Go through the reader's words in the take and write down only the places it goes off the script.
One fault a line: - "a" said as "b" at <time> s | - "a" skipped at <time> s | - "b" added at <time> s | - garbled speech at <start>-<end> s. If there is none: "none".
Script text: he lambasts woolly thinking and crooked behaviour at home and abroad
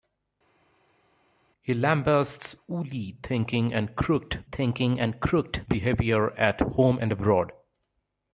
- "thinking and crooked" added at 4.5 s